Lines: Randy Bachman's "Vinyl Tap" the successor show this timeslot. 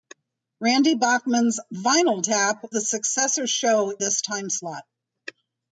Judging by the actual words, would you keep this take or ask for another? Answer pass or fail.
pass